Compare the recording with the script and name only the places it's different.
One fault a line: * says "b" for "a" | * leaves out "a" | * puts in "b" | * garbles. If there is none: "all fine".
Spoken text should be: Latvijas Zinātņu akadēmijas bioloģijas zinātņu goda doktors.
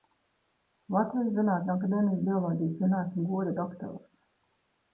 all fine